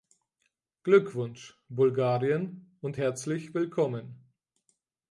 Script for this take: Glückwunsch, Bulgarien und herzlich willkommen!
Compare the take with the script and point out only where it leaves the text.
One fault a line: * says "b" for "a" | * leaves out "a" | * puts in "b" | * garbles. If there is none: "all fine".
all fine